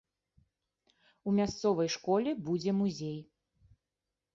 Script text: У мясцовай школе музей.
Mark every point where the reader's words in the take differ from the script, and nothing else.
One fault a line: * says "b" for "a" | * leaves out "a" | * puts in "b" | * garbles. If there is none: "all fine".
* puts in "будзе"